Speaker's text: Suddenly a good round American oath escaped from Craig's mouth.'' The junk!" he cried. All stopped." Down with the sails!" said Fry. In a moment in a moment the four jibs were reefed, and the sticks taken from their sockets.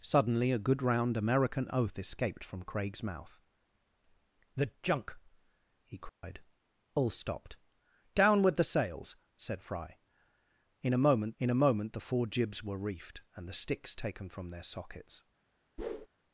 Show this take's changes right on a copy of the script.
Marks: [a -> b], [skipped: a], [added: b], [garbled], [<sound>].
Suddenly a good round American oath escaped from Craig's mouth.'' The junk!" he cried. [dropout] All stopped." Down with the sails!" said Fry. In a moment in a moment the four jibs were reefed, and the sticks taken from their sockets. [whoosh]